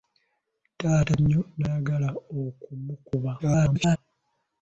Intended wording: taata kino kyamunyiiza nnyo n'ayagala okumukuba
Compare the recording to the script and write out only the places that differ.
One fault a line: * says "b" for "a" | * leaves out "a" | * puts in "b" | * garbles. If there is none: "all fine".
* leaves out "kino kyamunyiiza"
* garbles